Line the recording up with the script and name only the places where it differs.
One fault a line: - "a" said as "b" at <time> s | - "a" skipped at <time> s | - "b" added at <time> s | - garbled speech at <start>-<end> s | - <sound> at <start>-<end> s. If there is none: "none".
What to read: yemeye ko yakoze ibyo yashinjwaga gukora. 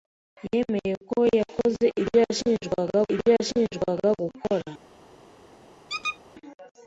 - "ibyo yashinjwaga" added at 3.1 s
- squeak at 5.9-6.2 s